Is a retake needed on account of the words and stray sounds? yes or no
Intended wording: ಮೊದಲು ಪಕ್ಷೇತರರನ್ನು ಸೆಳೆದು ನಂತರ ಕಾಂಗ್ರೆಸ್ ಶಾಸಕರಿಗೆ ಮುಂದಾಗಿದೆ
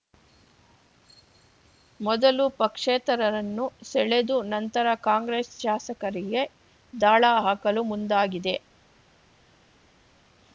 yes